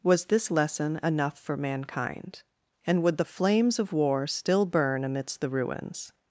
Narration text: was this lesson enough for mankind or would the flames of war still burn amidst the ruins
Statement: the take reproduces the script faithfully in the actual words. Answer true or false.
false